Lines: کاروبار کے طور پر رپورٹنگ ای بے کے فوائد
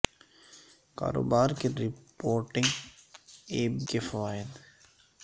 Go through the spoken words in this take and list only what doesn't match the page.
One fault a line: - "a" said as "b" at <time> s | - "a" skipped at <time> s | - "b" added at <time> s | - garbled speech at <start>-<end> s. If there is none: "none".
- "طور پر" skipped at 1.7 s
- "بے" skipped at 3.6 s